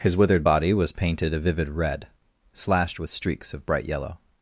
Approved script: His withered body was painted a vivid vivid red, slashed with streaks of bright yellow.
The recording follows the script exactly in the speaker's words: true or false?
false